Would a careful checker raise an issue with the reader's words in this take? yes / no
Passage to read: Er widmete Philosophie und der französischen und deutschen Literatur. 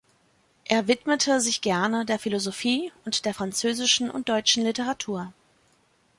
yes